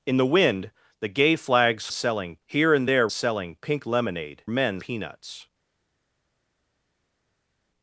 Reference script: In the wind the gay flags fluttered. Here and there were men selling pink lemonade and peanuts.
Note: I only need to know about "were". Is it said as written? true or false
false